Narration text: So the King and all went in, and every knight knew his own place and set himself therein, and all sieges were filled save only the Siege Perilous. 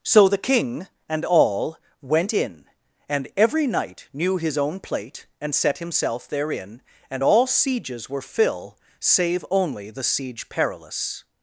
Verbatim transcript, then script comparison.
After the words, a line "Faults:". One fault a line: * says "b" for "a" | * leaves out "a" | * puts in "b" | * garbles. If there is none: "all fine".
So the King and all went in, and every knight knew his own plate and set himself therein, and all sieges were fill save only the Siege Perilous.
Faults:
* says "plate" for "place"
* says "fill" for "filled"